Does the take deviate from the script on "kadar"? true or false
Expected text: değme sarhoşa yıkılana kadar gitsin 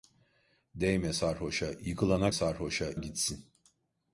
true